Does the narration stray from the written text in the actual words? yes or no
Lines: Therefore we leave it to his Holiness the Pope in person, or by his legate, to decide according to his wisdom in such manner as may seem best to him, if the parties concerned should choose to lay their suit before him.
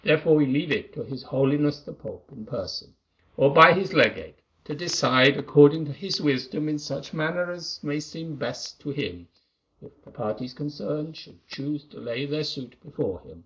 no